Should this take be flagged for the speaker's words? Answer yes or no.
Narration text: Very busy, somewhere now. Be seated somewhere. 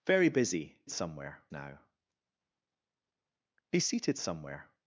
no